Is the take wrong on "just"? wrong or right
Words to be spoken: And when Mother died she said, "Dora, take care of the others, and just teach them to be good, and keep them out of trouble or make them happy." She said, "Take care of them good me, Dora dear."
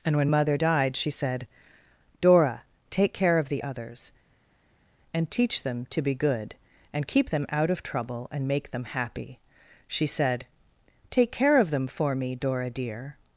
wrong